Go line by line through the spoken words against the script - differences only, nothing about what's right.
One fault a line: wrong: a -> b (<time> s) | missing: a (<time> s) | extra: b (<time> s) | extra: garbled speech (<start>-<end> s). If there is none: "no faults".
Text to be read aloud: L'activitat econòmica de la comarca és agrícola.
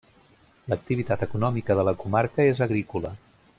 no faults